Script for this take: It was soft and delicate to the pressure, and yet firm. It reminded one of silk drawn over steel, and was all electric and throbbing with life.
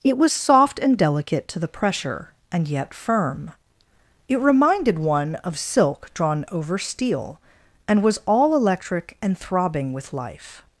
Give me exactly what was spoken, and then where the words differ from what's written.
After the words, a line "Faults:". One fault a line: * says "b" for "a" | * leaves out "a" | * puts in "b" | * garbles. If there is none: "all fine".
It was soft and delicate to the pressure, and yet firm. It reminded one of silk drawn over steel, and was all electric and throbbing with life.
Faults:
all fine